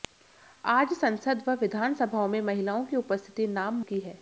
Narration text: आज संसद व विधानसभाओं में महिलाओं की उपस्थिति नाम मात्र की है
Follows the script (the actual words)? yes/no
no